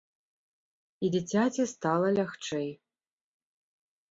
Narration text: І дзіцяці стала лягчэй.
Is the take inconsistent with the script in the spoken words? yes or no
no